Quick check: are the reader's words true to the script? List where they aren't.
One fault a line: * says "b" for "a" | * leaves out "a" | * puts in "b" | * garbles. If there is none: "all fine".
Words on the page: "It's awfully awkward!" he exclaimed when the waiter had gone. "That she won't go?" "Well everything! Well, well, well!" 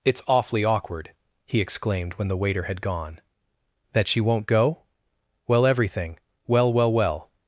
all fine